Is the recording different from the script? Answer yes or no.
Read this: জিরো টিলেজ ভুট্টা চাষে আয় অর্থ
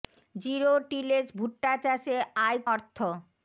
no